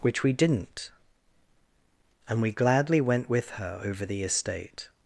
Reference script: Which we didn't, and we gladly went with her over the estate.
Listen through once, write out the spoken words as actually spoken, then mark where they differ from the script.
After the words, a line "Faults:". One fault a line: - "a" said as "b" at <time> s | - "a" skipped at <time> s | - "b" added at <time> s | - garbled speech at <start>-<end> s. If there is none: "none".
Which we didn't, and we gladly went with her over the estate.
Faults:
none